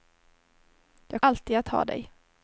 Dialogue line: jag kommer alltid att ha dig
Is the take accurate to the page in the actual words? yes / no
no